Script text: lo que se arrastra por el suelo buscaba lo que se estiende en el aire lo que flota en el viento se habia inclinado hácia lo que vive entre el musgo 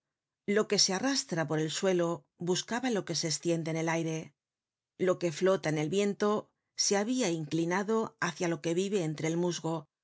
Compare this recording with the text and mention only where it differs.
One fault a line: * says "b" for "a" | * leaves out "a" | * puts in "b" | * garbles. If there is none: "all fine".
all fine